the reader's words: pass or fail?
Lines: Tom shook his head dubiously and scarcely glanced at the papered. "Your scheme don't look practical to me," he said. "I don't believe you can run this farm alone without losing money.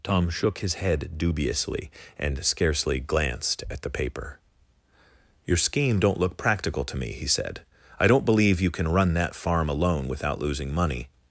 fail